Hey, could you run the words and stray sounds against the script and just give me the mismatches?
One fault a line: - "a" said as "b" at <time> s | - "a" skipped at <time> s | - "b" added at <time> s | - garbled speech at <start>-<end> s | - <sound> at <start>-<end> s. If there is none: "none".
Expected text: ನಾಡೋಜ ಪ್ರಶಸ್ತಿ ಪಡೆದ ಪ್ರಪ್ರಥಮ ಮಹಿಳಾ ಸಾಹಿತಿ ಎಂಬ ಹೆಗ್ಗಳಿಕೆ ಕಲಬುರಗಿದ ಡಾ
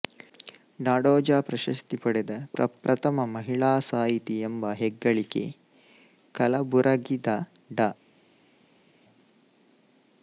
none